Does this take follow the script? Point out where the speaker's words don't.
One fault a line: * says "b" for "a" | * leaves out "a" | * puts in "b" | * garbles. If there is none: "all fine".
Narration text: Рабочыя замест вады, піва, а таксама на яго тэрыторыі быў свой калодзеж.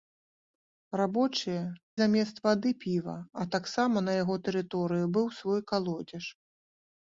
all fine